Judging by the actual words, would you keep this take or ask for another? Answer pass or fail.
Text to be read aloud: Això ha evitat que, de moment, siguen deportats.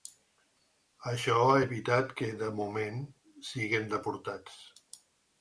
pass